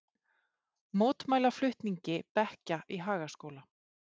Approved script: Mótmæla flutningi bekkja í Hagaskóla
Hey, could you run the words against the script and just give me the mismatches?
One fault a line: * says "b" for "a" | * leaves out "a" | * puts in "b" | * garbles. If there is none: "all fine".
all fine